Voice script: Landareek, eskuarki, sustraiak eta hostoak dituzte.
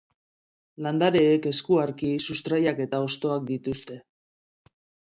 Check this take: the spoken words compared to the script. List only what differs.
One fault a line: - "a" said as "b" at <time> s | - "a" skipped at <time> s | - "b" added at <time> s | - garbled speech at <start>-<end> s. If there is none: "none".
none